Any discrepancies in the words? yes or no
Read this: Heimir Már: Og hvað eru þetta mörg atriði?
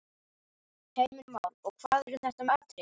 yes